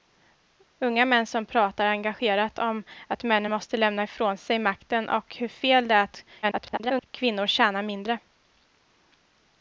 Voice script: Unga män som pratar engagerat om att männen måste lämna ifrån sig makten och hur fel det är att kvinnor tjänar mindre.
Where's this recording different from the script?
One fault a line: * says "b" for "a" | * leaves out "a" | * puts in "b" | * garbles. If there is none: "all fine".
* garbles